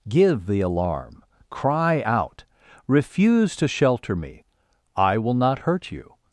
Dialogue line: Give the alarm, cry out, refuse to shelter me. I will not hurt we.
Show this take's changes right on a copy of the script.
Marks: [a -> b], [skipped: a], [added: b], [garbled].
Give the alarm, cry out, refuse to shelter me. I will not hurt [we. -> you]